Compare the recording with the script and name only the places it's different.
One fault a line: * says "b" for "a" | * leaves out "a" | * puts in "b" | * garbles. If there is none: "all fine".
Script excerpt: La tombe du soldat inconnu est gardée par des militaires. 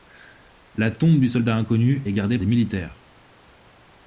* leaves out "par"